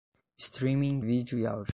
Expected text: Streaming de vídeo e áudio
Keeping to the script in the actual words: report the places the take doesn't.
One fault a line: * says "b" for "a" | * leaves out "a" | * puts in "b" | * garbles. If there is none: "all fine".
* leaves out "de"